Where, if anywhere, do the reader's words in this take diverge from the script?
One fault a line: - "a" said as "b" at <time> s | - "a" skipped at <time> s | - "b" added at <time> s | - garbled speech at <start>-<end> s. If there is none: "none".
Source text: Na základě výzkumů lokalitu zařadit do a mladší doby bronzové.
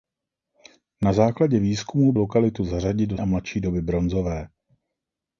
none